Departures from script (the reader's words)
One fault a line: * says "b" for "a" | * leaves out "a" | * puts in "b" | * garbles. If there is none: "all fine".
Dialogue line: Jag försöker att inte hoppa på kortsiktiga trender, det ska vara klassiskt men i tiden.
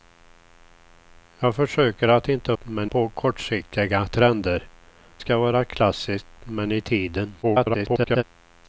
* says "men" for "hoppa"
* leaves out "det"
* garbles